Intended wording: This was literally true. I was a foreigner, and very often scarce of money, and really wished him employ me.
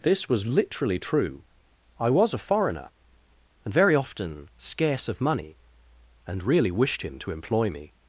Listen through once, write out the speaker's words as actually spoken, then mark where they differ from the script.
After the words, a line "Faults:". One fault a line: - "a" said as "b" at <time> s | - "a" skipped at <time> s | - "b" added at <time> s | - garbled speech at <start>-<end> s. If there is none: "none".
This was literally true. I was a foreigner, and very often scarce of money, and really wished him to employ me.
Faults:
- "to" added at 7.2 s